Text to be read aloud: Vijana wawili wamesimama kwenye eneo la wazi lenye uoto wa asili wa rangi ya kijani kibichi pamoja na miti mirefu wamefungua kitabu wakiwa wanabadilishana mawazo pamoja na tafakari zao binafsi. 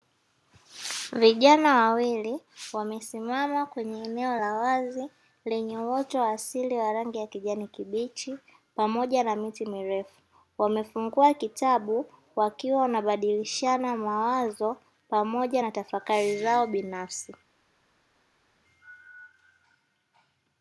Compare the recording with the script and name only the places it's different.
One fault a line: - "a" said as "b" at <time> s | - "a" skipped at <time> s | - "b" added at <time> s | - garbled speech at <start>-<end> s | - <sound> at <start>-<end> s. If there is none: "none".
none